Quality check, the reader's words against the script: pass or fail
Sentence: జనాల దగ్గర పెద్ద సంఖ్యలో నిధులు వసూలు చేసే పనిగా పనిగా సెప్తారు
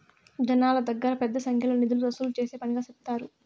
fail